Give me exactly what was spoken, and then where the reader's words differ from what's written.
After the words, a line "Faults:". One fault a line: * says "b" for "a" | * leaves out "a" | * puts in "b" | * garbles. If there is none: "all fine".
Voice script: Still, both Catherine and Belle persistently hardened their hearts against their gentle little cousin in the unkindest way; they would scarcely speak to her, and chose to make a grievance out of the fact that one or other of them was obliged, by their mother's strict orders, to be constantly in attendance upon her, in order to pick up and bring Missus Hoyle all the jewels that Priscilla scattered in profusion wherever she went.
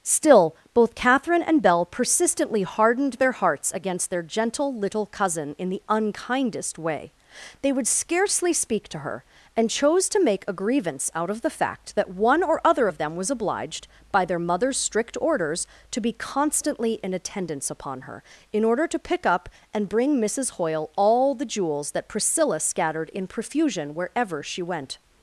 Still, both Catherine and Belle persistently hardened their hearts against their gentle little cousin in the unkindest way; they would scarcely speak to her, and chose to make a grievance out of the fact that one or other of them was obliged, by their mother's strict orders, to be constantly in attendance upon her, in order to pick up and bring Missus Hoyle all the jewels that Priscilla scattered in profusion wherever she went.
Faults:
all fine